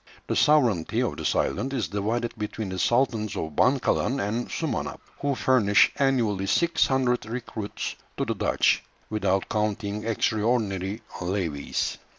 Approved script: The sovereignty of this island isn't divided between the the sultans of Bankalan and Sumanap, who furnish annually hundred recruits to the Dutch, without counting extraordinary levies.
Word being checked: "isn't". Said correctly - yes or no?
no